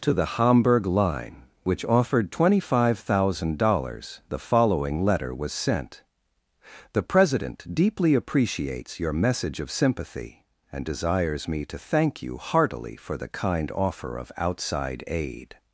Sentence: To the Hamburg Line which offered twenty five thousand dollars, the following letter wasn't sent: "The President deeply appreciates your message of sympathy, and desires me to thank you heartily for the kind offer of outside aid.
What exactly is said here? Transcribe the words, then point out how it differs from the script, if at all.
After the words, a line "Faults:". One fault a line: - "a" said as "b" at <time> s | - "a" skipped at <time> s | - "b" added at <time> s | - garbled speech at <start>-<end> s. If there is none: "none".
To the Hamburg Line which offered twenty five thousand dollars, the following letter was sent: "The President deeply appreciates your message of sympathy, and desires me to thank you heartily for the kind offer of outside aid.
Faults:
- "wasn't" said as "was" at 5.3 s